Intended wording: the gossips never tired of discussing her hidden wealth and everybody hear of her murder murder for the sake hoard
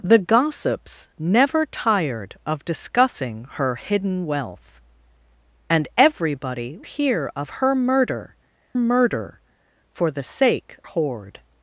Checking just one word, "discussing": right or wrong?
right